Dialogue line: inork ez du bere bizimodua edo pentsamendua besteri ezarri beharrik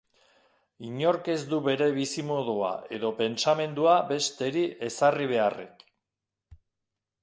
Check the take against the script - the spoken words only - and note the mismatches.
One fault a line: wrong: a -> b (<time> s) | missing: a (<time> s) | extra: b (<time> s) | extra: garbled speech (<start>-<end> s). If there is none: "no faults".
no faults